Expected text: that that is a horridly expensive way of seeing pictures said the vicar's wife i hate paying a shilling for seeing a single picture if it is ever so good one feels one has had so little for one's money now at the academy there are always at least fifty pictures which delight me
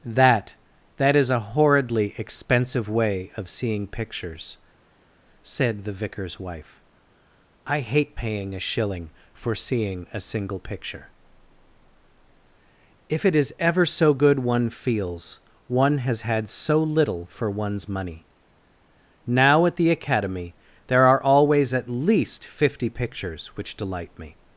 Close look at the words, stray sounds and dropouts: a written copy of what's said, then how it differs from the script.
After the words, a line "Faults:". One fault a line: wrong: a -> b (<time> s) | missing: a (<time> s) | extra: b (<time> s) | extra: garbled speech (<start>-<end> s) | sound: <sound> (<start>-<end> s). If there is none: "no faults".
that that is a horridly expensive way of seeing pictures said the vicar's wife i hate paying a shilling for seeing a single picture if it is ever so good one feels one has had so little for one's money now at the academy there are always at least fifty pictures which delight me
Faults:
no faults